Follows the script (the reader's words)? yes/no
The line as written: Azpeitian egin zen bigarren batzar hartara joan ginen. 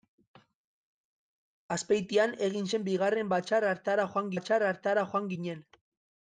no